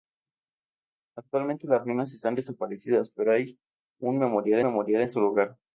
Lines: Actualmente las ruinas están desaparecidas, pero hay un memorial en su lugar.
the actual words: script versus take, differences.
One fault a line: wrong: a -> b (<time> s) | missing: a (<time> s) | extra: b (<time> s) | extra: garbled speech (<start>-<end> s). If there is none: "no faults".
extra: memorial (4.6 s)